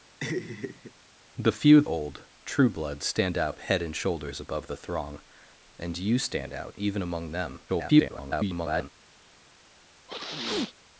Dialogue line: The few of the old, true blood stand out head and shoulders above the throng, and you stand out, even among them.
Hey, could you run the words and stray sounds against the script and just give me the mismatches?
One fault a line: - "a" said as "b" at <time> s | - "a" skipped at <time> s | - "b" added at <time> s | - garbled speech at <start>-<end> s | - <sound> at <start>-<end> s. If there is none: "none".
- laugh at 0.2-0.9 s
- "the" skipped at 1.8 s
- garbled speech at 7.7-8.9 s
- sneeze at 10.1-10.7 s